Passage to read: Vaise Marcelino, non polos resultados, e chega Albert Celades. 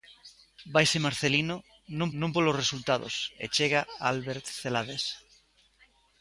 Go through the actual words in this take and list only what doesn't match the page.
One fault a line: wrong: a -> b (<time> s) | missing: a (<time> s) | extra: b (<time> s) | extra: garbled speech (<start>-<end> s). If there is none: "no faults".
extra: non (2.2 s)